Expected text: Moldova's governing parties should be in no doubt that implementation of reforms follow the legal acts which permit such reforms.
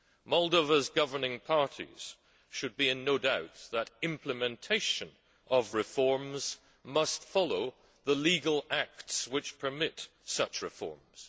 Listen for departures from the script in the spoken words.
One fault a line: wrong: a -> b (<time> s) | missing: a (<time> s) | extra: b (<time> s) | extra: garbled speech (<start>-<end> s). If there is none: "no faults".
extra: must (6.8 s)